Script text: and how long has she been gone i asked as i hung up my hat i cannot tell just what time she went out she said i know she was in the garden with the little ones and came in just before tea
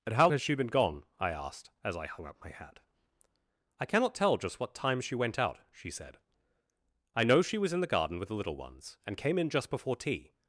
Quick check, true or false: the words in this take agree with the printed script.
false